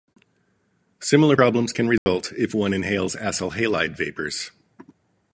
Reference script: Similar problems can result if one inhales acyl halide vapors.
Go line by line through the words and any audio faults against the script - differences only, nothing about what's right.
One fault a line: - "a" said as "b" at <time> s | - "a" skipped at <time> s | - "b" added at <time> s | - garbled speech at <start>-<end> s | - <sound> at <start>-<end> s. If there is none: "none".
- dropout at 2.0-2.1 s